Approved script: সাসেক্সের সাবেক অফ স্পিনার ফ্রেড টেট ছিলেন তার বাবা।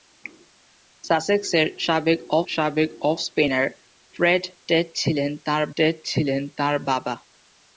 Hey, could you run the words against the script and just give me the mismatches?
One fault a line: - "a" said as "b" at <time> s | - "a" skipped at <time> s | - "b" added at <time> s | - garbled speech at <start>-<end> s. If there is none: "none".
- "সাবেক অফ" added at 2.5 s
- "টেট ছিলেন তার" added at 5.8 s